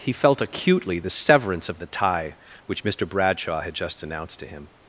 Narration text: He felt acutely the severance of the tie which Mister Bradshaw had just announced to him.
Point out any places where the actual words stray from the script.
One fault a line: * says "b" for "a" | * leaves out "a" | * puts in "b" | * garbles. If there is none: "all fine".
all fine